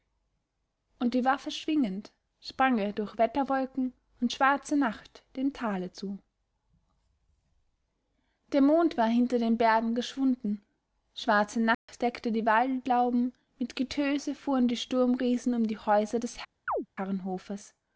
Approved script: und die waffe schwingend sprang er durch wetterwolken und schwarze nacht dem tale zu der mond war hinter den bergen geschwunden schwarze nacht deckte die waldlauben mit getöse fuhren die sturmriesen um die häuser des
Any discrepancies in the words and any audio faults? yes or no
yes